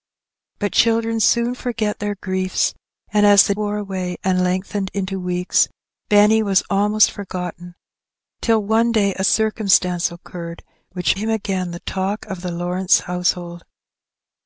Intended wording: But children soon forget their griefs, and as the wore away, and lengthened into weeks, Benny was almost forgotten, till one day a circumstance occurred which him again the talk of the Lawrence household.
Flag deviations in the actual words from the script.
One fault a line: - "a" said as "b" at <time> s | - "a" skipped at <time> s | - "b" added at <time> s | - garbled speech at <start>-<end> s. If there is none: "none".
none